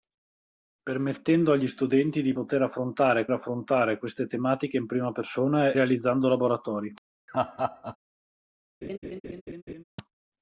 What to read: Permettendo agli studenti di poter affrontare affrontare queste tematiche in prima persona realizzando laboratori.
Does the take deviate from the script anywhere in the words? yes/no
no